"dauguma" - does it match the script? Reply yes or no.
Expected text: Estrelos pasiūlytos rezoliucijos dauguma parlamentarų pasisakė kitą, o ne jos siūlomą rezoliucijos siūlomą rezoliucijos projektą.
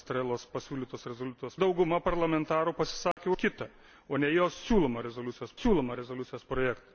yes